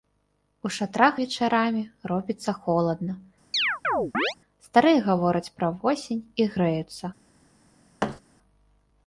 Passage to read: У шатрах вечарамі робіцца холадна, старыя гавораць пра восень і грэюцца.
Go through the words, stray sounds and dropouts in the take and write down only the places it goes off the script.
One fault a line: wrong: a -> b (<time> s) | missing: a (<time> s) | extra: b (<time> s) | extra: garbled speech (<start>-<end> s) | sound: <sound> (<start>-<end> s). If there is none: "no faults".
sound: chirp (3.5-4.3 s)
sound: thud (8.0-8.2 s)